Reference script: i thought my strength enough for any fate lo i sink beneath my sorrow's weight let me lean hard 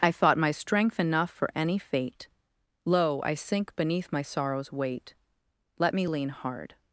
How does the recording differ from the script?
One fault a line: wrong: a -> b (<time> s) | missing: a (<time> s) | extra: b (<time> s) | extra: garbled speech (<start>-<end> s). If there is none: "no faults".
no faults